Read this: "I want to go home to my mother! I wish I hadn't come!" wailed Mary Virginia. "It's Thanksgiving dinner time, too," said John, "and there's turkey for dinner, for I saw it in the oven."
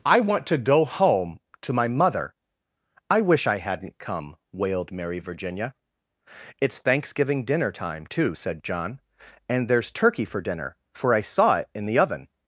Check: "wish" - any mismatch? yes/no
no